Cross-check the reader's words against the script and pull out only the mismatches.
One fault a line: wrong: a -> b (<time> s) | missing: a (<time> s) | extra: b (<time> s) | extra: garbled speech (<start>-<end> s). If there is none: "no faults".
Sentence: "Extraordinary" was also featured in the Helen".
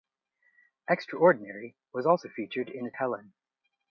no faults